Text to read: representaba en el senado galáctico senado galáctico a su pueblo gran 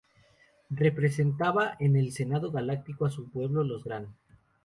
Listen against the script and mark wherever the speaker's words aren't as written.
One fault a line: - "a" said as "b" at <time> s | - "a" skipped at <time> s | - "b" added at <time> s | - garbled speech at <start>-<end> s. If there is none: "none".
- "senado galáctico" skipped at 3.0 s
- "los" added at 3.6 s